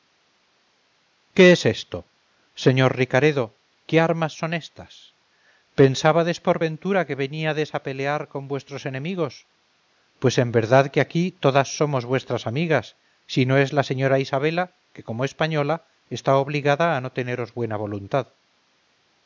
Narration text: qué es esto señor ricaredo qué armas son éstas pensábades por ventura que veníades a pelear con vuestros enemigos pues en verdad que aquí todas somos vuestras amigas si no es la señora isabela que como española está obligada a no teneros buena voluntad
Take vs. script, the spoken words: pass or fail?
pass